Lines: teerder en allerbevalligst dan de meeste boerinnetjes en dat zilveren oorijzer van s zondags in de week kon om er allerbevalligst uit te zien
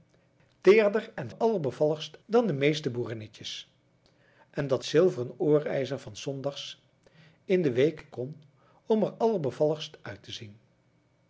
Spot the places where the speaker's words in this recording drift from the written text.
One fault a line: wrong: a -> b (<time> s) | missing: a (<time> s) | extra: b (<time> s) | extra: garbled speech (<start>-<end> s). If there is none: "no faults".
no faults